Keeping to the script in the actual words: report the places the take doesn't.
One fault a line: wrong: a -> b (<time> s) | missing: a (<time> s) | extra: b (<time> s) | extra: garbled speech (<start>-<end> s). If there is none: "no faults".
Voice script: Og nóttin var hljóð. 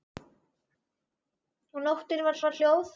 extra: var (2.5 s)